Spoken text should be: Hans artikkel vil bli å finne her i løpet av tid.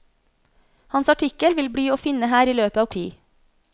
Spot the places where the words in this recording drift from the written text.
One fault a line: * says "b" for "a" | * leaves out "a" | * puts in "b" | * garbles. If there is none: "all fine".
all fine